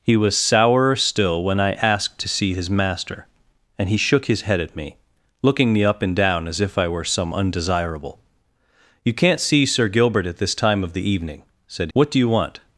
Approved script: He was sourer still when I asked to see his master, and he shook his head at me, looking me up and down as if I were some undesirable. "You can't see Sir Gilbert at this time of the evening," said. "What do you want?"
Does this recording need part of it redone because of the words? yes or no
no